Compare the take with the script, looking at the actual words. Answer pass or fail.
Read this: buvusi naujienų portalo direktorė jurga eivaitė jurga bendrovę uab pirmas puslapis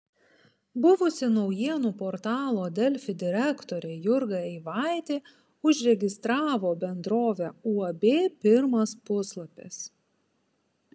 fail